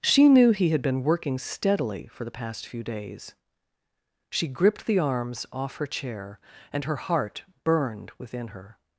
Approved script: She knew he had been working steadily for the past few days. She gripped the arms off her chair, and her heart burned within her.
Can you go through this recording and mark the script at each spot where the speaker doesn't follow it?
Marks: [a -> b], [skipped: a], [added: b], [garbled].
She knew he had been working steadily for the past few days. She gripped the arms off her chair, and her heart burned within her.